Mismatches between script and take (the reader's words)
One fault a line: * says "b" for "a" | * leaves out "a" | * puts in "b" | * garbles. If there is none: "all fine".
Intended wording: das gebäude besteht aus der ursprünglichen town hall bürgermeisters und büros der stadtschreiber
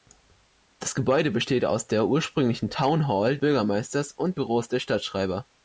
all fine